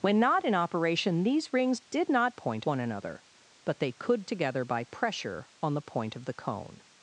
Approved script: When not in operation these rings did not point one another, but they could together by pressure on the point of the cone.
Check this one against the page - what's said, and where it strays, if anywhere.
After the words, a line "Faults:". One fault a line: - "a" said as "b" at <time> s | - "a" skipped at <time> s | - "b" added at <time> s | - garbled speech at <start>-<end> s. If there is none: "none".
When not in operation these rings did not point one another, but they could together by pressure on the point of the cone.
Faults:
none